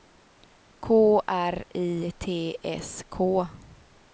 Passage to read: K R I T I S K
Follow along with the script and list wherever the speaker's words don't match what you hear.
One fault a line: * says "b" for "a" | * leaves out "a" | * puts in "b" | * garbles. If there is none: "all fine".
* leaves out "I"